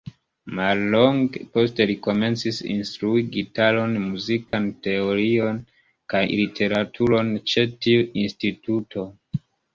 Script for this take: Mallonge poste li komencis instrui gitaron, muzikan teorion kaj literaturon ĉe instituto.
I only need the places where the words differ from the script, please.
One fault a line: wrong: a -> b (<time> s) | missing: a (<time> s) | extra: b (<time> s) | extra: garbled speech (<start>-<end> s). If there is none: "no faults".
extra: tiu (7.9 s)